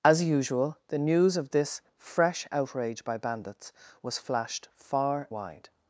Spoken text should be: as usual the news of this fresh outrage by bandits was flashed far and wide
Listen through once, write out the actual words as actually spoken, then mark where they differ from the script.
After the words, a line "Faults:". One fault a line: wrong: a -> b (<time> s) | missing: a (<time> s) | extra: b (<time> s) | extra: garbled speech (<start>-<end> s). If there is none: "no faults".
as usual the news of this fresh outrage by bandits was flashed far wide
Faults:
missing: and (5.3 s)